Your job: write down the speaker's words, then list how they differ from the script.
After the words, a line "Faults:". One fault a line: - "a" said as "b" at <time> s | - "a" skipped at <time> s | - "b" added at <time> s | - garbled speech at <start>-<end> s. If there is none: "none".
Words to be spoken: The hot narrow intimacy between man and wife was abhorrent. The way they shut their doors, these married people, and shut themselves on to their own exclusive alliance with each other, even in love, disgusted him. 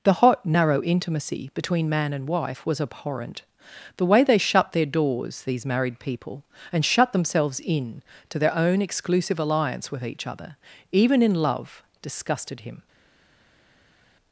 The hot narrow intimacy between man and wife was abhorrent. The way they shut their doors, these married people, and shut themselves in to their own exclusive alliance with each other, even in love, disgusted him.
Faults:
- "on" said as "in" at 7.6 s